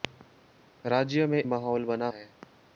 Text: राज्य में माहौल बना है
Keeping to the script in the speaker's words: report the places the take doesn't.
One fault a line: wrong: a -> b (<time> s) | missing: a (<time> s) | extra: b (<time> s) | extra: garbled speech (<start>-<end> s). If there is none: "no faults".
no faults